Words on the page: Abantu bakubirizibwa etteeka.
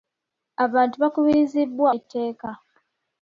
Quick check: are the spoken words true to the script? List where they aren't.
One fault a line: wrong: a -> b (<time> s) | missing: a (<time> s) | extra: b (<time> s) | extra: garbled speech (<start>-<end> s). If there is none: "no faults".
no faults